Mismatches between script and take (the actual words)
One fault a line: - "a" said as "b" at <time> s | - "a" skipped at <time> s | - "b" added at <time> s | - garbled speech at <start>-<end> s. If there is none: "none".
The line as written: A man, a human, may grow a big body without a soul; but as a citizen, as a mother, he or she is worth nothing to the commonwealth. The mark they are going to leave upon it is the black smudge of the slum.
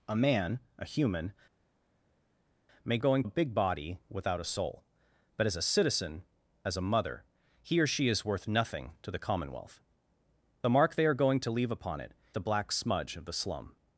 - "grow" said as "going" at 3.0 s
- "is" skipped at 12.1 s